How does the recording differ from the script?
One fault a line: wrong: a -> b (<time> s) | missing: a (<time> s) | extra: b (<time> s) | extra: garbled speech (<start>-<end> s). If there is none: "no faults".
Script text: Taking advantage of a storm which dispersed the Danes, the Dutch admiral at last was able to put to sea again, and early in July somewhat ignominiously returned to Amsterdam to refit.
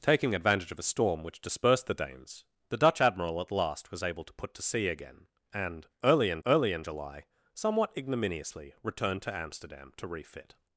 extra: early in (6.5 s)